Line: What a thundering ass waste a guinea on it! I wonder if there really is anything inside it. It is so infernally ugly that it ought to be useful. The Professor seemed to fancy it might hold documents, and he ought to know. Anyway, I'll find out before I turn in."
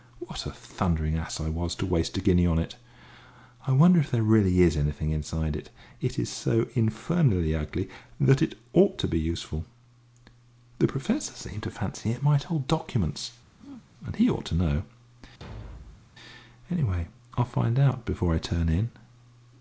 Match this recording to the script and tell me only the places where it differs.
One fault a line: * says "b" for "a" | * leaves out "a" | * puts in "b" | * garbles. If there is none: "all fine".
* puts in "I was to"